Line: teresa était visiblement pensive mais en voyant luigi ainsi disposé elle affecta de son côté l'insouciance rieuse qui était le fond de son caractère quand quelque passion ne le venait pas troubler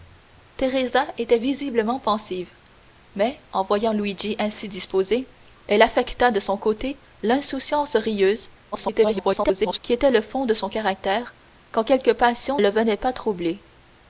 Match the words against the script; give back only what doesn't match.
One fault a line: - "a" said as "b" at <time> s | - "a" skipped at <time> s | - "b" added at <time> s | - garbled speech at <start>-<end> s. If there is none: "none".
- garbled speech at 8.7-9.8 s
- "ne" skipped at 12.6 s